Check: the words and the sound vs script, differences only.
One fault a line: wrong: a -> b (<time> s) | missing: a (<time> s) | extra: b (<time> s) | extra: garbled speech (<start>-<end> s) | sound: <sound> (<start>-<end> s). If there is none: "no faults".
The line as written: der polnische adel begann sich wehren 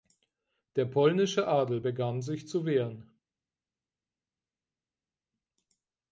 extra: zu (2.5 s)